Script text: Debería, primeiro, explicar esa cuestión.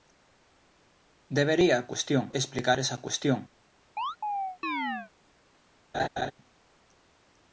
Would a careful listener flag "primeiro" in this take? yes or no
yes